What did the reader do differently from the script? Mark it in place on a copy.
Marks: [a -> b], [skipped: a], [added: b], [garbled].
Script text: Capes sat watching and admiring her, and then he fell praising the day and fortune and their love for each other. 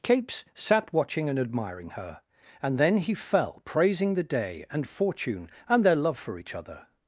Capes sat watching and admiring her, and then he fell praising the day and fortune and their love for each other.